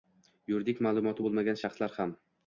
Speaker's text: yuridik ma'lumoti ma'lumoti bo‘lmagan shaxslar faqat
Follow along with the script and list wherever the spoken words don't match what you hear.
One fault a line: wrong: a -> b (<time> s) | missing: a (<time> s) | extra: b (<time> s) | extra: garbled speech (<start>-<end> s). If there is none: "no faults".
missing: ma'lumoti (1.2 s)
wrong: faqat -> ham (2.0 s)